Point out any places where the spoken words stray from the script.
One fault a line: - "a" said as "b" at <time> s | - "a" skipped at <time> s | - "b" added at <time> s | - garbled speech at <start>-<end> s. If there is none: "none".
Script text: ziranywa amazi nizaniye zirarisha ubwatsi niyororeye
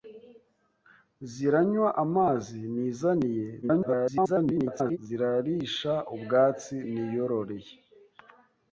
- garbled speech at 3.6-5.0 s